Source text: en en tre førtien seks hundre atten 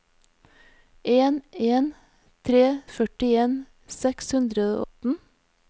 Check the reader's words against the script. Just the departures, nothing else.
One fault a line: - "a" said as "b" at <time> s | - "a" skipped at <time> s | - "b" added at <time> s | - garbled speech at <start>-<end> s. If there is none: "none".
none